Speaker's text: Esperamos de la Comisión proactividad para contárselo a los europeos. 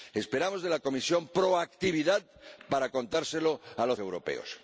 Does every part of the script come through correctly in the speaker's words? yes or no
yes